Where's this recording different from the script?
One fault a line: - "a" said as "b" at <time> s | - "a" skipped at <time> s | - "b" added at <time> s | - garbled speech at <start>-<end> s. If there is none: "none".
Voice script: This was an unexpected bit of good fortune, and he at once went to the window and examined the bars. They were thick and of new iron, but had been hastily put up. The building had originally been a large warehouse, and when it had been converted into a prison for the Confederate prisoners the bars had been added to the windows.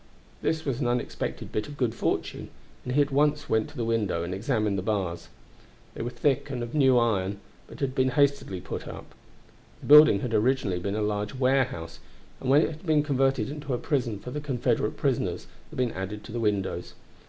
- "bars had" skipped at 15.8 s